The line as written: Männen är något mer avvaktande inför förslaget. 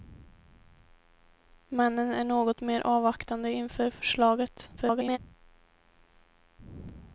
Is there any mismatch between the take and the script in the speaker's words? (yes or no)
yes